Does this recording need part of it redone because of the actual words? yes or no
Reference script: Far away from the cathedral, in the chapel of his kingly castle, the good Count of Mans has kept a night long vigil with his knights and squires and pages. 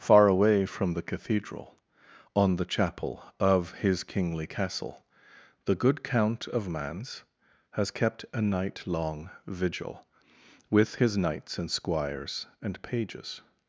yes